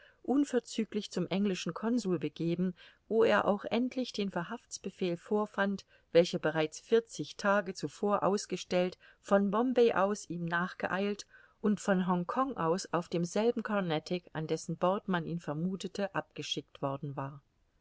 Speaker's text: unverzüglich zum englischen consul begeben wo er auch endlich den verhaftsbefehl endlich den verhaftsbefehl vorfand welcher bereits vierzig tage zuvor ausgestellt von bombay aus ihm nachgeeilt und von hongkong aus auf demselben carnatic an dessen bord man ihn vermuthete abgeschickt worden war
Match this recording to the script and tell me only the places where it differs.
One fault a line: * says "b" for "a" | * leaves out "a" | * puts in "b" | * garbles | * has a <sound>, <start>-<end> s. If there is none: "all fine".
* leaves out "endlich den verhaftsbefehl"